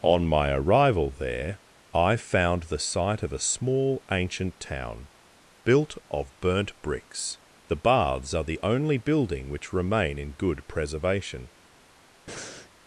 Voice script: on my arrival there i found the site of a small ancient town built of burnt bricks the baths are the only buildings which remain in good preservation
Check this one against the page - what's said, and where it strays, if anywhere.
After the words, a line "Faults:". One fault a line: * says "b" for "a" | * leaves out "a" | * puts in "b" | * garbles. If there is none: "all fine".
on my arrival there i found the site of a small ancient town built of burnt bricks the baths are the only building which remain in good preservation
Faults:
* says "building" for "buildings"